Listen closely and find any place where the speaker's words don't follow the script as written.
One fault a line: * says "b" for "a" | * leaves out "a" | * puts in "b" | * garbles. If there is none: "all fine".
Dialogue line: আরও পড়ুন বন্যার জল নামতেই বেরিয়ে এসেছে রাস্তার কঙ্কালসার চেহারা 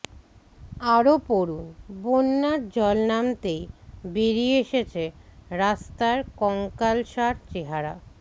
all fine